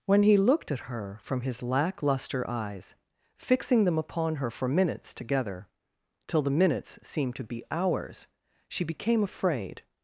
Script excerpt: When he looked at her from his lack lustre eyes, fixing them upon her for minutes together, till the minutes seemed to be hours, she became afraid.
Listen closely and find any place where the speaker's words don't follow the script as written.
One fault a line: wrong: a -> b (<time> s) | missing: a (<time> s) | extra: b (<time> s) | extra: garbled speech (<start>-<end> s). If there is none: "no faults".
no faults